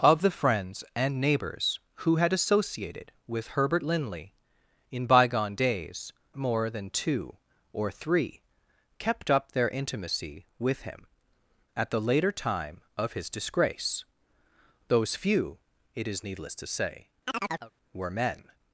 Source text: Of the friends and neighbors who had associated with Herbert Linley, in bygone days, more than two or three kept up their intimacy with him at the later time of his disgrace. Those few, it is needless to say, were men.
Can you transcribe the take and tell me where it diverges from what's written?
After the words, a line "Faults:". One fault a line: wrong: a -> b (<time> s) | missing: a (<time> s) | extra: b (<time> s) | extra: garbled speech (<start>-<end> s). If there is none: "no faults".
Of the friends and neighbors who had associated with Herbert Linley, in bygone days, more than two or three kept up their intimacy with him at the later time of his disgrace. Those few, it is needless to say, were men.
Faults:
no faults